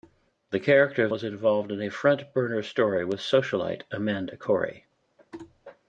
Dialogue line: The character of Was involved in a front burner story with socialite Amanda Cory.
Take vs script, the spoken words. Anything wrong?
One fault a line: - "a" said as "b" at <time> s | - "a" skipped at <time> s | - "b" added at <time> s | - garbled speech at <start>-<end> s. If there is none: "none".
none